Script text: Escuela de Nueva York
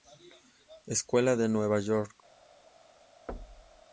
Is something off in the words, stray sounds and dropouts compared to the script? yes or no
yes